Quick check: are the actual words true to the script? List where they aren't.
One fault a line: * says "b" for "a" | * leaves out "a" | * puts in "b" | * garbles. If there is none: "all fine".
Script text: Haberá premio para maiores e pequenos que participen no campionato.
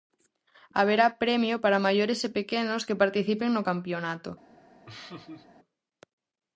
all fine